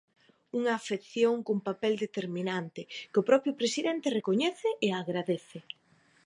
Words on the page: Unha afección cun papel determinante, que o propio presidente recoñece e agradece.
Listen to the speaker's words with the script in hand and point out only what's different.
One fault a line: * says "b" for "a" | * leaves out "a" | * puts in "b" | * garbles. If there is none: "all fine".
all fine